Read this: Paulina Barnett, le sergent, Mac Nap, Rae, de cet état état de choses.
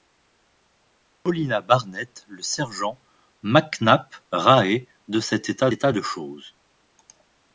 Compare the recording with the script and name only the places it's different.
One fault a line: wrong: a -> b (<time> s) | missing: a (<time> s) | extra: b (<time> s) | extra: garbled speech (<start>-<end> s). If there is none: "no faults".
no faults